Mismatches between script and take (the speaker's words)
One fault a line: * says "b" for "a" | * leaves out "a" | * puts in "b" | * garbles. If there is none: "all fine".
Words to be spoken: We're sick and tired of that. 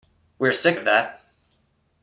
* leaves out "and tired"